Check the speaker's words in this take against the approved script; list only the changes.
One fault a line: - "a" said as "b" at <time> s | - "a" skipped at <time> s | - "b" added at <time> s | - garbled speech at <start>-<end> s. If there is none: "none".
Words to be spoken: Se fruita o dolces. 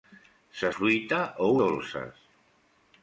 none